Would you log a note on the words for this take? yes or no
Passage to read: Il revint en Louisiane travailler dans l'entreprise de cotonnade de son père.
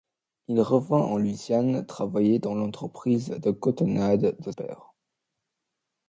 yes